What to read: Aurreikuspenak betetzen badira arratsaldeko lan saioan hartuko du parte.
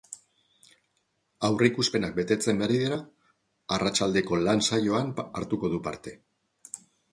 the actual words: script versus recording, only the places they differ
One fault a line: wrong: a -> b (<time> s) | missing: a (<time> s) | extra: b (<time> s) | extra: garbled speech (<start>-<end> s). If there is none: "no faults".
no faults